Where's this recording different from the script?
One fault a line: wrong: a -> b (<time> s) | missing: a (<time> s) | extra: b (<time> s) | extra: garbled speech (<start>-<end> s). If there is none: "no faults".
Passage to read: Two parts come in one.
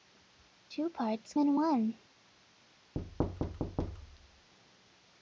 missing: come (1.4 s)